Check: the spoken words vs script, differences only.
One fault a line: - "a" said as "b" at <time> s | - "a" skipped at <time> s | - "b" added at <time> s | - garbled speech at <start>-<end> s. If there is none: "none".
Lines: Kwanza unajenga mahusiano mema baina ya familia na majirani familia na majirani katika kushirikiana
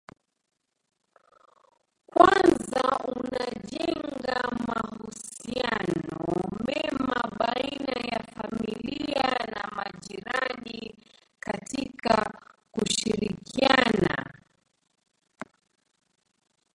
- "familia na majirani" skipped at 10.9 s